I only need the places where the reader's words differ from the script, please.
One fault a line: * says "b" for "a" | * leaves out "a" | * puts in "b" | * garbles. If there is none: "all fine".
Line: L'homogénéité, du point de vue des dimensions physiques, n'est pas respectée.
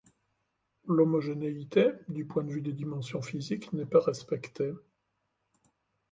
all fine